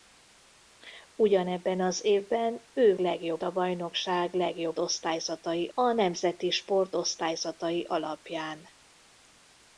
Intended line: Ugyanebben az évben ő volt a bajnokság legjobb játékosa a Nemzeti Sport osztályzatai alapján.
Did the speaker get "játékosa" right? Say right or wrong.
wrong